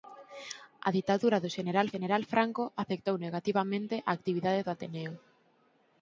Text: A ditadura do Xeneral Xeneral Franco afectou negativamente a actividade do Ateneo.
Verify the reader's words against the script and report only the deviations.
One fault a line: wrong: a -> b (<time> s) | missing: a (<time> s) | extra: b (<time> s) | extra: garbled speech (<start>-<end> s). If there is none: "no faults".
no faults